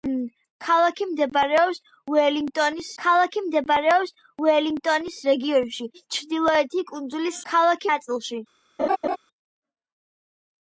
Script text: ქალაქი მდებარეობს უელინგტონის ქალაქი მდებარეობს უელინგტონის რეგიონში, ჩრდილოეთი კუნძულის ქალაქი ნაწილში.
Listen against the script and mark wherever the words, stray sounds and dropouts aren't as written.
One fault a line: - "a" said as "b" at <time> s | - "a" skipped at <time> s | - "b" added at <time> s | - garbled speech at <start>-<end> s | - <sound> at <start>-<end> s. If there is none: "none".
- laugh at 8.8-9.2 s